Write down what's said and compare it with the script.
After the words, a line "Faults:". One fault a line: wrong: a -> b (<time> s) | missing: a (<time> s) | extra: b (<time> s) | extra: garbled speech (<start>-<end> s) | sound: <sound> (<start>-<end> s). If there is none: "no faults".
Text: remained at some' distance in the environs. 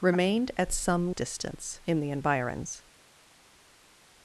remained at some' distance in the environs.
Faults:
no faults